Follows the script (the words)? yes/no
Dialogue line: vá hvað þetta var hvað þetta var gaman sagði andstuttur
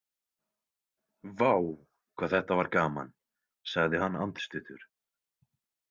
no